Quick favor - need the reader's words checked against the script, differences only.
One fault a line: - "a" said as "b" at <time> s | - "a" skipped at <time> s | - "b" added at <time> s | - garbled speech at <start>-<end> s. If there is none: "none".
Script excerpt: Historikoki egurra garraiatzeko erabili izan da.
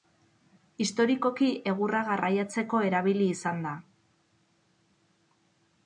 none